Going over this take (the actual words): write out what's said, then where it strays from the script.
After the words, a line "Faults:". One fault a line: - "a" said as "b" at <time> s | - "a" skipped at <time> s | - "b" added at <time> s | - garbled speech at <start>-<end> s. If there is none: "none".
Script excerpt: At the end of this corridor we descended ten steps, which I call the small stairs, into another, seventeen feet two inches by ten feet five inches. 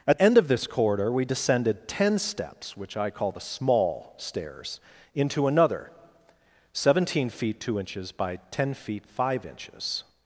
At end of this corridor we descended ten steps, which I call the small stairs, into another, seventeen feet two inches by ten feet five inches.
Faults:
- "the" skipped at 0.2 s